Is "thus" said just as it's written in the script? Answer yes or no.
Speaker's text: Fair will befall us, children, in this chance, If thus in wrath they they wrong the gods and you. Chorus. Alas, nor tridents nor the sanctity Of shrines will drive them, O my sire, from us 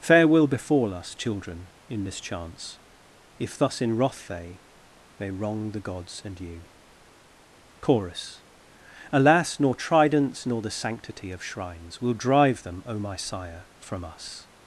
yes